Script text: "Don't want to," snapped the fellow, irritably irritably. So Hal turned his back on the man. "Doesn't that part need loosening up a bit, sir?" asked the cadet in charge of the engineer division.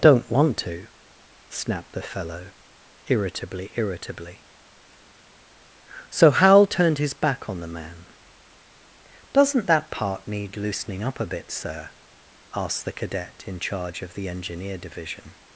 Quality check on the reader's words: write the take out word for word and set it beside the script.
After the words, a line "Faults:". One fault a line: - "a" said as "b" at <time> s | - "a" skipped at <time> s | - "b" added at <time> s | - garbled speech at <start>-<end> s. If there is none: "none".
"Don't want to," snapped the fellow, irritably irritably. So Hal turned his back on the man. "Doesn't that part need loosening up a bit, sir?" asked the cadet in charge of the engineer division.
Faults:
none